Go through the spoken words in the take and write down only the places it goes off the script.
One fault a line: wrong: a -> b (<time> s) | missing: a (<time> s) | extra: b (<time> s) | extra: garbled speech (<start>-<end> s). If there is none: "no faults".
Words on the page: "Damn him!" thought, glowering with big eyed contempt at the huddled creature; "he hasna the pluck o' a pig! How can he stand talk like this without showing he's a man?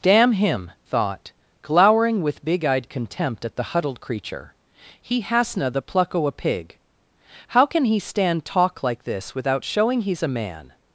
no faults